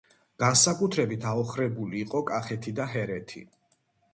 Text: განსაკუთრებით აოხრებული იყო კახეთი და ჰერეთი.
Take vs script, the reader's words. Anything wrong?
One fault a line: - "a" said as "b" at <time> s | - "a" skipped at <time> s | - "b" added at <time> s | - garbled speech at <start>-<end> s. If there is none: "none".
none